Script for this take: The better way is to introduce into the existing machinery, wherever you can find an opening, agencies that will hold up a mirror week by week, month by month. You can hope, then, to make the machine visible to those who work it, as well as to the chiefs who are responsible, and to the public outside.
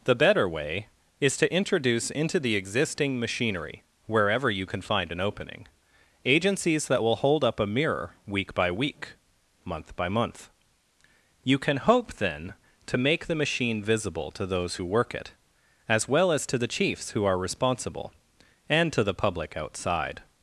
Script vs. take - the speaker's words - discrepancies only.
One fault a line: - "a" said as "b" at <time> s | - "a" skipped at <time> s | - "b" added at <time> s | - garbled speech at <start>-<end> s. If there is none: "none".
none